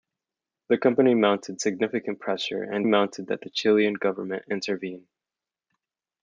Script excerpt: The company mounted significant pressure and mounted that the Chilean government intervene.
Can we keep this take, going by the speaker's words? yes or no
yes